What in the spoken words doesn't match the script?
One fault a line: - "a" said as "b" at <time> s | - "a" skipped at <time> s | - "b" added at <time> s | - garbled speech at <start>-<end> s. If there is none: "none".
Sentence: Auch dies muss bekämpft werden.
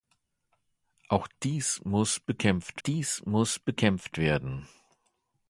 - "dies muss bekämpft" added at 2.9 s